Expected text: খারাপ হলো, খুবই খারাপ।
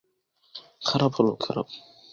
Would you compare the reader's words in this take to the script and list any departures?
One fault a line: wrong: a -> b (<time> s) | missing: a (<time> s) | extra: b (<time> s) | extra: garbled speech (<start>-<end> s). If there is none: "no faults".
missing: খুবই (1.3 s)